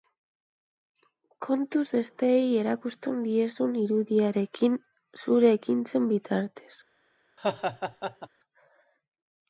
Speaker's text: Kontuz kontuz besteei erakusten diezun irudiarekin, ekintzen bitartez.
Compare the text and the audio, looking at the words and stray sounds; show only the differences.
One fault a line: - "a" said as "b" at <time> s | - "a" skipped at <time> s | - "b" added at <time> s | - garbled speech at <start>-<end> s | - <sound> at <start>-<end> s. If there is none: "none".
- "kontuz" skipped at 1.8 s
- "zure" added at 5.3 s
- laugh at 7.4-8.3 s